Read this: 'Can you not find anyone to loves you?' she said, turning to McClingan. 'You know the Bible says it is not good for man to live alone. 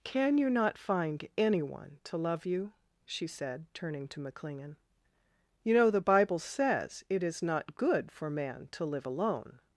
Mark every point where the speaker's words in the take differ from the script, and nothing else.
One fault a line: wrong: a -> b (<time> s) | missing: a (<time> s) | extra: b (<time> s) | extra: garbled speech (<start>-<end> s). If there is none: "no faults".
wrong: loves -> love (2.2 s)